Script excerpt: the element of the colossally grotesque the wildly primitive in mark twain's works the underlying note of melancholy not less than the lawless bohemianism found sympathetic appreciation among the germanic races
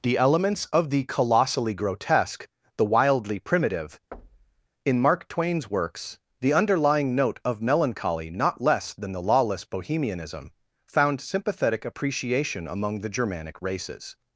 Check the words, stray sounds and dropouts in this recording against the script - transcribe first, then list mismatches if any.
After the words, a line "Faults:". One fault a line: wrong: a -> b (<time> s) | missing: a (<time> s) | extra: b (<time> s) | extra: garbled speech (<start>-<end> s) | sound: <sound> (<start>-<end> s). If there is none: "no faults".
the elements of the colossally grotesque the wildly primitive in mark twain's works the underlying note of melancholy not less than the lawless bohemianism found sympathetic appreciation among the germanic races
Faults:
wrong: element -> elements (0.2 s)
sound: thud (4.1-4.7 s)